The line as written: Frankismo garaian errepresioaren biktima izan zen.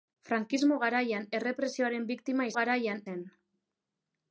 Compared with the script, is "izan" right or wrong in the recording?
wrong